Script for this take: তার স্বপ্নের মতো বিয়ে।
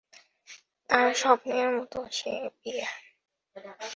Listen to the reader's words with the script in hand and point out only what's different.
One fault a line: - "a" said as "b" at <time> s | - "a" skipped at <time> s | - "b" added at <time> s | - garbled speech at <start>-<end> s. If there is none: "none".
- "সে" added at 2.1 s